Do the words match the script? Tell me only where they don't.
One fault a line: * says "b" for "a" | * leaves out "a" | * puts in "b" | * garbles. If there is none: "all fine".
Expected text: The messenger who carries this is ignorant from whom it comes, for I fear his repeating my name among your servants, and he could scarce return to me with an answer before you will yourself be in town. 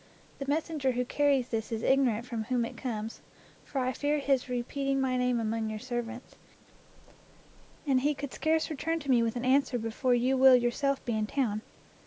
all fine